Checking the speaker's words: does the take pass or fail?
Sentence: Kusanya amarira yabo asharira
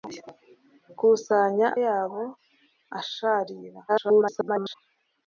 fail